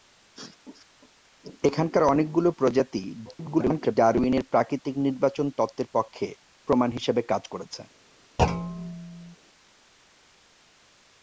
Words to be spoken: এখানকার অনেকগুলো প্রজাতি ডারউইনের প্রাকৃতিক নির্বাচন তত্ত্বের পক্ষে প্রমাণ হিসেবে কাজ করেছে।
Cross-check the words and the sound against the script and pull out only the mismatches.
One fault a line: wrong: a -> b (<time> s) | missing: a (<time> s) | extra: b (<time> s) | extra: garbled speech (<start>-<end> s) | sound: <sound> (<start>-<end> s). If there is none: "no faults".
extra: garbled speech (3.3-4.0 s)
sound: thud (8.4-9.4 s)